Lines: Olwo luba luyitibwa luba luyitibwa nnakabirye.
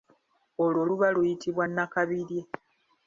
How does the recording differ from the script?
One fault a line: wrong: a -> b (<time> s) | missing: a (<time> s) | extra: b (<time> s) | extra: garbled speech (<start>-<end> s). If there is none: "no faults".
missing: luba luyitibwa (1.6 s)